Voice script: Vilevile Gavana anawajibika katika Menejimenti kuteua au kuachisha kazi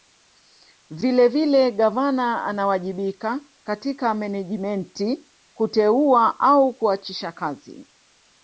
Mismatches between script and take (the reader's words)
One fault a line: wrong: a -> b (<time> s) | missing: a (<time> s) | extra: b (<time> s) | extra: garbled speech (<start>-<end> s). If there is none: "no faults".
no faults